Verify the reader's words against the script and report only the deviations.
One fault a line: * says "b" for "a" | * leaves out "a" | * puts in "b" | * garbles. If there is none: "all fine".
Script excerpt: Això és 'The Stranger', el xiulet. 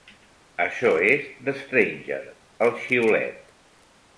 all fine